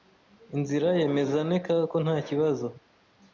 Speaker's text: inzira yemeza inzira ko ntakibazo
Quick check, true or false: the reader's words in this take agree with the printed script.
false